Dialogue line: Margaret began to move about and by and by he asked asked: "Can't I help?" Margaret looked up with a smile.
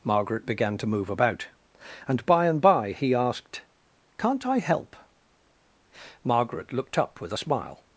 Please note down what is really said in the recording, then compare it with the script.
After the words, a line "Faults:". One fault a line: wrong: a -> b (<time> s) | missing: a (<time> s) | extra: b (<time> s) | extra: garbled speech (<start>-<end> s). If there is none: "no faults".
Margaret began to move about and by and by he asked: "Can't I help?" Margaret looked up with a smile.
Faults:
missing: asked (3.6 s)